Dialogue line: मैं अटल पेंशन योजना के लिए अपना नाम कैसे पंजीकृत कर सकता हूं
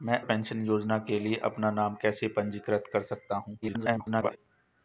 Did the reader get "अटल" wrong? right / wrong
wrong